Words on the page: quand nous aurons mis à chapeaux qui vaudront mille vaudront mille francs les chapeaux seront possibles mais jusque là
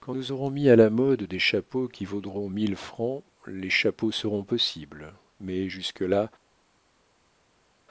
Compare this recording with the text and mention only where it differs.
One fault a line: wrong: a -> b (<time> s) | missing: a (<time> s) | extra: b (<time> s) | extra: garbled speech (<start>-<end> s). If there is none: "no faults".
extra: la mode des (0.8 s)
missing: vaudront mille (2.8 s)